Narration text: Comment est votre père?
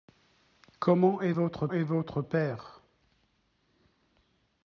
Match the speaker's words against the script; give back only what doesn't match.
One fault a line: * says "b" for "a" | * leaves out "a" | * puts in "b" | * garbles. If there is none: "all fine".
* puts in "est votre"